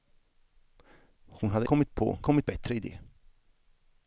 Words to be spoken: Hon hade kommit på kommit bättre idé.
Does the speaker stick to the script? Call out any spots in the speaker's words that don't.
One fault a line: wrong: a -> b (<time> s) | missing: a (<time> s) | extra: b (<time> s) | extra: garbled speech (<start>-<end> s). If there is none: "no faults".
no faults